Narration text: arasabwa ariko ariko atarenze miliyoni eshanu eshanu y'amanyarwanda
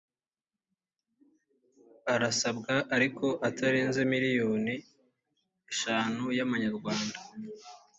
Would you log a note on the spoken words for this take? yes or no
yes